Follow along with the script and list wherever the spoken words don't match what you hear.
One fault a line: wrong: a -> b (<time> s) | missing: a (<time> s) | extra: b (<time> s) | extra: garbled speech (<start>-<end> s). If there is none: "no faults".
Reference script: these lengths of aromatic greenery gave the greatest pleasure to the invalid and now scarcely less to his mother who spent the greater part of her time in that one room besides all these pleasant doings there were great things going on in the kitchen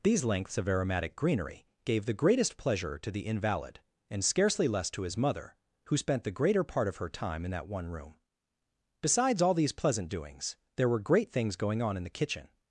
missing: now (4.2 s)